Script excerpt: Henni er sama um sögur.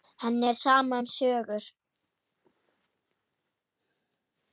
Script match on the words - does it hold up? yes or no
yes